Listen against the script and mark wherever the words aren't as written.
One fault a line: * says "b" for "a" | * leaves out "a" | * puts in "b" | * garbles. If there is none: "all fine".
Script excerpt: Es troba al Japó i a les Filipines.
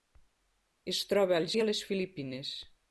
* leaves out "Japó"